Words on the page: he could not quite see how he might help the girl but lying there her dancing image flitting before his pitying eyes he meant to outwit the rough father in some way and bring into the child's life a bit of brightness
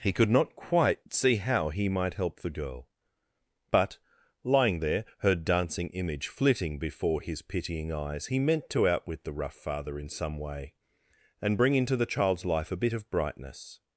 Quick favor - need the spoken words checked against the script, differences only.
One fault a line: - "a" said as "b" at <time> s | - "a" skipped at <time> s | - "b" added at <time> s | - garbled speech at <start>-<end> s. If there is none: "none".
none